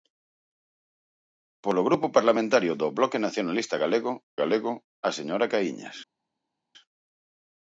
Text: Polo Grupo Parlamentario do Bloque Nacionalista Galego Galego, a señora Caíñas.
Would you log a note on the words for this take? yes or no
no